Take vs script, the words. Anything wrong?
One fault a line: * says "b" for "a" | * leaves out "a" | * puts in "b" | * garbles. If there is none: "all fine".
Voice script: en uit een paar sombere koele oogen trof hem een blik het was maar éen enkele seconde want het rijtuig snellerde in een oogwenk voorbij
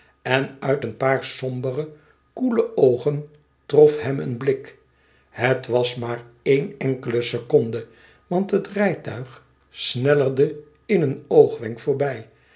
all fine